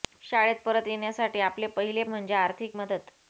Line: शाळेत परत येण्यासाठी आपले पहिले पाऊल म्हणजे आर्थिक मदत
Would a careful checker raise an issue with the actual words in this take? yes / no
yes